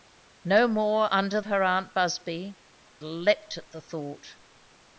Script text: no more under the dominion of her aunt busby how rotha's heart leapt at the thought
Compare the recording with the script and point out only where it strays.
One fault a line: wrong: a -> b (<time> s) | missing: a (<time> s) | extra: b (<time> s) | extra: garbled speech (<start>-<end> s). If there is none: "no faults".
missing: the dominion of (1.4 s)
missing: how rotha's heart (2.6 s)